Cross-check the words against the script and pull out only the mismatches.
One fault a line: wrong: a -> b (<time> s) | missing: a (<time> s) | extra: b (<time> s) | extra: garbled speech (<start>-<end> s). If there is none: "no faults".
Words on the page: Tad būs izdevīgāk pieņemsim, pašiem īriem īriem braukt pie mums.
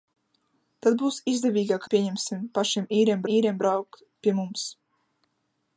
no faults